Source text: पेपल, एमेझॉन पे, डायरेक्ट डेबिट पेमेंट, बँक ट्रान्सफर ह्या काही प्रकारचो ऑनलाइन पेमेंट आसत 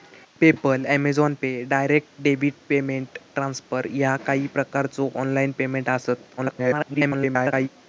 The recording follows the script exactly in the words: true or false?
false